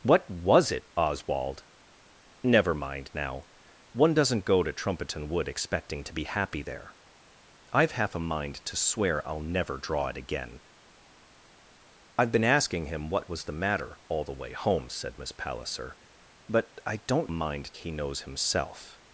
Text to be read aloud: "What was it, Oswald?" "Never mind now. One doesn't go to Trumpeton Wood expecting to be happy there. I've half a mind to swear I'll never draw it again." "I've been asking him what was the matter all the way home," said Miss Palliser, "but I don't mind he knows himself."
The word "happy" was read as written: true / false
true